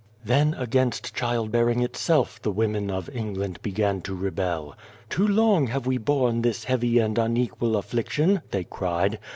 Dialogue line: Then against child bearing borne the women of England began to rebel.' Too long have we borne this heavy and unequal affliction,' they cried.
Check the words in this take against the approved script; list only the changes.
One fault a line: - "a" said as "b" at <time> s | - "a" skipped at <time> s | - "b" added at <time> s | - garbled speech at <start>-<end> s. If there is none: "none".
- "borne" said as "itself" at 1.8 s